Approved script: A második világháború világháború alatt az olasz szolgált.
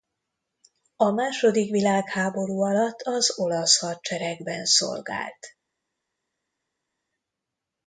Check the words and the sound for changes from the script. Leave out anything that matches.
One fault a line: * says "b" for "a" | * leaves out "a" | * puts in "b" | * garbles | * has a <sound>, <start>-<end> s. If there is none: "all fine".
* leaves out "világháború"
* puts in "hadseregben"